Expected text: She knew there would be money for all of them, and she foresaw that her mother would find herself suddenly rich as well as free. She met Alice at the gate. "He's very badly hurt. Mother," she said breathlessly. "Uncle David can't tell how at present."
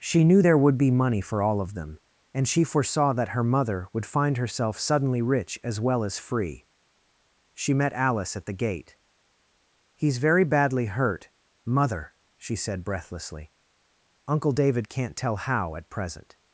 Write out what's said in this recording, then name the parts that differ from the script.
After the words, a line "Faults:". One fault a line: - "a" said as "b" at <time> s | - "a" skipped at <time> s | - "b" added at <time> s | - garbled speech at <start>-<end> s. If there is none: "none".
She knew there would be money for all of them, and she foresaw that her mother would find herself suddenly rich as well as free. She met Alice at the gate. "He's very badly hurt. Mother," she said breathlessly. "Uncle David can't tell how at present."
Faults:
none